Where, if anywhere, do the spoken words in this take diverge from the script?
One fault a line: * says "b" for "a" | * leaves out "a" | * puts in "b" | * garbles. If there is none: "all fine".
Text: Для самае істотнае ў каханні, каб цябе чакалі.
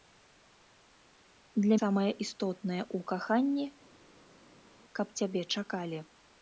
all fine